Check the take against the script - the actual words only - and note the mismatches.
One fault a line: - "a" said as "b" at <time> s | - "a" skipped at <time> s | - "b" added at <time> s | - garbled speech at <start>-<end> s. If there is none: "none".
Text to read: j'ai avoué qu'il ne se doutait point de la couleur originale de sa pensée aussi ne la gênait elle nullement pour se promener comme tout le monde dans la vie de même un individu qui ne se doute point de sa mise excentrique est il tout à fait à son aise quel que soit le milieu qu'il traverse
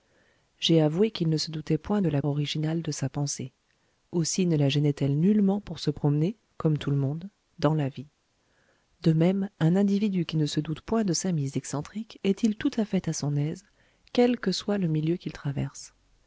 - "couleur" skipped at 2.2 s